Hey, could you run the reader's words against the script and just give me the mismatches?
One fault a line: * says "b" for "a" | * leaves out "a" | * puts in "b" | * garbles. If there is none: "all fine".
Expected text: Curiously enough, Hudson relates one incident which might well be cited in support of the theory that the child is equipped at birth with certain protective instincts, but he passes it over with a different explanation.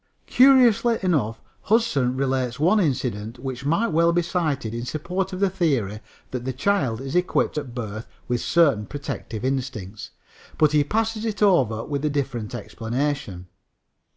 all fine